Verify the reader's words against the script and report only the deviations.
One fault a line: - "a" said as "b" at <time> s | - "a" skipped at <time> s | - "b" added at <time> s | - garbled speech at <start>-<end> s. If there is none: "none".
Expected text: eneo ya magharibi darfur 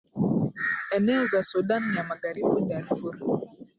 - "za sudan" added at 1.2 s